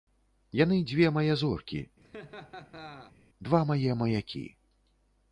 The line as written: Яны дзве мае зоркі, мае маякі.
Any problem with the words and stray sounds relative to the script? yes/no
yes